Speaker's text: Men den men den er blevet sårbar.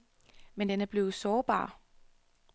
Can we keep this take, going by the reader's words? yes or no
no